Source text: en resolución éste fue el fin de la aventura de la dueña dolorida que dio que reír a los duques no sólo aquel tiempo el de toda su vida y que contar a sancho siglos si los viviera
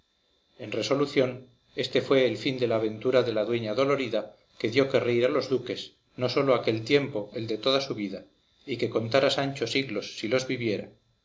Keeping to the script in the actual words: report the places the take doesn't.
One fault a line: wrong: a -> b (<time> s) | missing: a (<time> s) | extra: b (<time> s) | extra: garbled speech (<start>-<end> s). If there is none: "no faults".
no faults